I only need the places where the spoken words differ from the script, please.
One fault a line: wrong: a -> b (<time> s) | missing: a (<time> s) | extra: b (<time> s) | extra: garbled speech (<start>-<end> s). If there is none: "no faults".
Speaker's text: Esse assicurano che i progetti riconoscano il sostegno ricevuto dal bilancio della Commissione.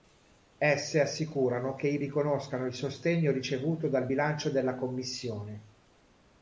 missing: progetti (2.0 s)